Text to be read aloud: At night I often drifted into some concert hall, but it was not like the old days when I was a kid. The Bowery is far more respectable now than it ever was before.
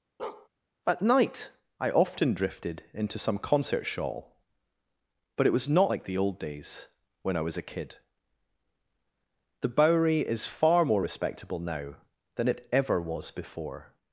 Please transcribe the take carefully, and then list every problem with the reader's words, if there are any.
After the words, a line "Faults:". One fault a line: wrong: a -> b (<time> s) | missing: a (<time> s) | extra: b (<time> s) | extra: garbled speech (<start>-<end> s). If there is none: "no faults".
At night I often drifted into some concert shawl, but it was not like the old days when I was a kid. The Bowery is far more respectable now than it ever was before.
Faults:
wrong: hall -> shawl (3.9 s)